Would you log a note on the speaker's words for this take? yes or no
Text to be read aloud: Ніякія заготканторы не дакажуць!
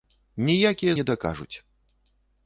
yes